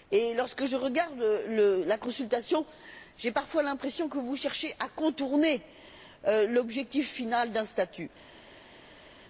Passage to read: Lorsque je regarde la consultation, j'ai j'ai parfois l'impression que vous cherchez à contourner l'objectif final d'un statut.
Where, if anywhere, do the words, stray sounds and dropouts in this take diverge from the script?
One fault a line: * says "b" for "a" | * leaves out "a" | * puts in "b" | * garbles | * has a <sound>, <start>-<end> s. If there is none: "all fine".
* leaves out "j'ai"